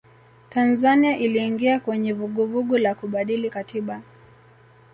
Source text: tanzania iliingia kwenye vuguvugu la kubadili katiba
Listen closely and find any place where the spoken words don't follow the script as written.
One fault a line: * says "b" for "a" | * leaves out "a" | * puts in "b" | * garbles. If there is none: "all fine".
all fine